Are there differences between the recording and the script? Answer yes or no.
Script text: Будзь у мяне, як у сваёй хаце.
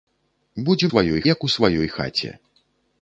yes